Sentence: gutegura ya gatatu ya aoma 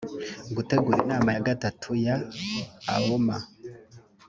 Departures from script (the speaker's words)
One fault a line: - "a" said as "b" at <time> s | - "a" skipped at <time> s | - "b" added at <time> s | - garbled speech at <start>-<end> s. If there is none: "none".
- "inama" added at 1.1 s